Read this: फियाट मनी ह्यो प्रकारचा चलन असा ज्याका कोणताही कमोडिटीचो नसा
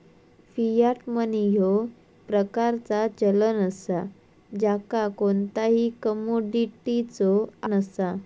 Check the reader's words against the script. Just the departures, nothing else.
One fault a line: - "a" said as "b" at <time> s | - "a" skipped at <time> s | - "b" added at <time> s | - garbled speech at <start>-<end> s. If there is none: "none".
none